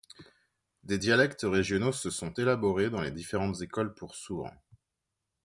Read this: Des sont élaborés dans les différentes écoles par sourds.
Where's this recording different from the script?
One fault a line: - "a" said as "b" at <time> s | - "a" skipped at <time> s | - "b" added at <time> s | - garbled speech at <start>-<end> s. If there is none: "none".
- "dialectes régionaux se" added at 0.9 s
- "par" said as "pour" at 4.0 s